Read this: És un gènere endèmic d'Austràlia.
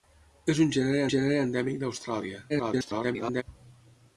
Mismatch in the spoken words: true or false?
true